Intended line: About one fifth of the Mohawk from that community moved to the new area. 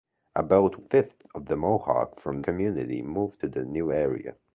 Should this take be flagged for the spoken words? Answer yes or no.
yes